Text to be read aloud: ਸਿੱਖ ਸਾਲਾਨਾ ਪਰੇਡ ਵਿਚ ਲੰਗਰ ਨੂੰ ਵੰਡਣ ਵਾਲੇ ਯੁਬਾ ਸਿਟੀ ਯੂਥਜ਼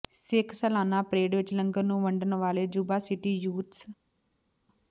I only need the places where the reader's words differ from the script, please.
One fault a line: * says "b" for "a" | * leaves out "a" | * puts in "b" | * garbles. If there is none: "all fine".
all fine